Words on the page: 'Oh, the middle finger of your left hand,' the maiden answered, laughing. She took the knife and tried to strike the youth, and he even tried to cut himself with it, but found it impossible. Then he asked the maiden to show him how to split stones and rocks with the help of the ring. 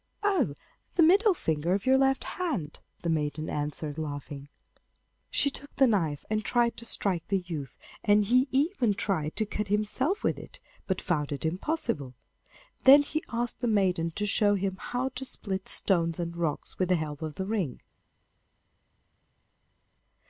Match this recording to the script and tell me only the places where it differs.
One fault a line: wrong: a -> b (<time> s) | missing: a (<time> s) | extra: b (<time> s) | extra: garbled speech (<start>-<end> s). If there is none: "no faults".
no faults